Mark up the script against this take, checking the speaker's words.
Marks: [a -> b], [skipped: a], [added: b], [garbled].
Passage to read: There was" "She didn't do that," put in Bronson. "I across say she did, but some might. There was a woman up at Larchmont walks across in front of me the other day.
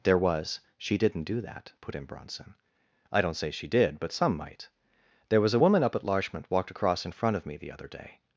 There was" "She didn't do that," put in Bronson. "I [across -> don't] say she did, but some might. There was a woman up at Larchmont [walks -> walked] across in front of me the other day.